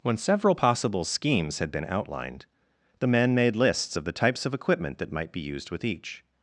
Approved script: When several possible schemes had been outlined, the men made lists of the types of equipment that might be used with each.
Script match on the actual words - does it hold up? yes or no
yes